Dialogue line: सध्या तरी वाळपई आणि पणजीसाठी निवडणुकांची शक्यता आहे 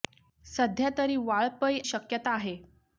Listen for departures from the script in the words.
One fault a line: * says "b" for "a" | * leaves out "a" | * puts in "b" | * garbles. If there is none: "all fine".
* leaves out "आणि पणजीसाठी निवडणुकांची"